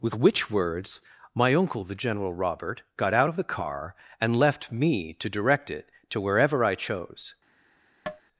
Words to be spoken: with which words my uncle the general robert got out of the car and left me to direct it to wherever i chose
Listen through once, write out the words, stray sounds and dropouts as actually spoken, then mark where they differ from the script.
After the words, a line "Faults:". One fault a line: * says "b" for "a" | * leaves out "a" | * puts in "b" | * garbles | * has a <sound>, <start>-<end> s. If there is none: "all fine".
with which words my uncle the general robert got out of the car and left me to direct it to wherever i chose
Faults:
* has a tap, 8.1-8.2 s